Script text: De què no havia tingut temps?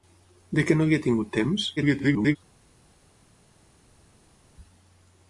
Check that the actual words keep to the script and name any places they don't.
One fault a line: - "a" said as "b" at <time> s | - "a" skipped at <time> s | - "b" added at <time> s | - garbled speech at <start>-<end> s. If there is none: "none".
- garbled speech at 1.8-2.4 s